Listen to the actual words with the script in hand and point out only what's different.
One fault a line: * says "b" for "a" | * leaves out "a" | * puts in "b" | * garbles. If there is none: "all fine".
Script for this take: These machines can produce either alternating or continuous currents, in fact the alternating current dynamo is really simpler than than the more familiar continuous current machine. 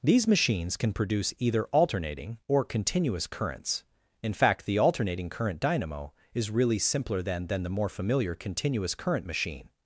all fine